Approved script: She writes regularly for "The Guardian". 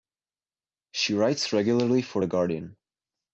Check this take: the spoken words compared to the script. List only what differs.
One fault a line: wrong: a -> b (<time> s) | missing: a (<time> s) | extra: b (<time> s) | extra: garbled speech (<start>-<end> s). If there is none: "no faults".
no faults